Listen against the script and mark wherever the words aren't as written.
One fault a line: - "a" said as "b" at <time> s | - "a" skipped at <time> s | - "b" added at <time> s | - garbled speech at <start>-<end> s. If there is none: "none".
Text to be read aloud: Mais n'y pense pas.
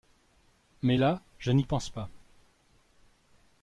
- "là je" added at 0.9 s